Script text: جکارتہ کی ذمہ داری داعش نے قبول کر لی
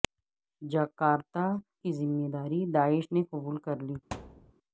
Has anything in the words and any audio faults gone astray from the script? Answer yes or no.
yes